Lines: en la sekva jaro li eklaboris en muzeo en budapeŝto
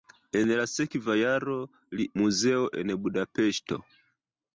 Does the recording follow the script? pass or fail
fail